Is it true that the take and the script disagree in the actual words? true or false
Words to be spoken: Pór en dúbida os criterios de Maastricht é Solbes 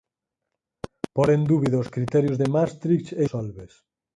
false